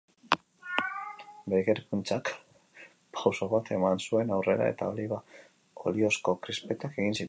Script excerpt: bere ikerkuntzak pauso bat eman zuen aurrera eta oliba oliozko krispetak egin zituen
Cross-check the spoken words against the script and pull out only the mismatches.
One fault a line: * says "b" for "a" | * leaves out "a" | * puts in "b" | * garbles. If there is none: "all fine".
all fine